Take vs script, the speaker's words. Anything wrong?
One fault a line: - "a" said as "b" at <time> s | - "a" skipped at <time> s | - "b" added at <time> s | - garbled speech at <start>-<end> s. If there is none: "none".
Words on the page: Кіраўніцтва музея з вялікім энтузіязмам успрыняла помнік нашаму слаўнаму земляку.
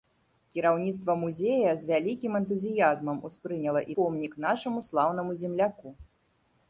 none